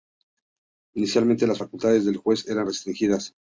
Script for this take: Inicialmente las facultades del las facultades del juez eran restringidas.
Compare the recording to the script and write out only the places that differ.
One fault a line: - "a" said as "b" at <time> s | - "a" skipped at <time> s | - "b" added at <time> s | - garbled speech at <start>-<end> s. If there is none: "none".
- "las facultades del" skipped at 2.2 s